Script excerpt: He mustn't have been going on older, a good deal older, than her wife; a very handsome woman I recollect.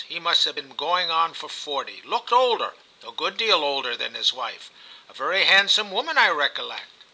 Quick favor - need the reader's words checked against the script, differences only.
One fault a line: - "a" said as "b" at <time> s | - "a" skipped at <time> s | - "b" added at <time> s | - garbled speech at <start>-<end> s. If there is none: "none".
- "mustn't" said as "must" at 0.2 s
- "for forty looked" added at 1.3 s
- "her" said as "his" at 4.1 s